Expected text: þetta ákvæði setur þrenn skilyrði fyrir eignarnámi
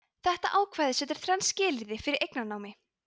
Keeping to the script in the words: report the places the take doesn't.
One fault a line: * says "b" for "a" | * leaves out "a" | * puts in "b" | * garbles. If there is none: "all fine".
all fine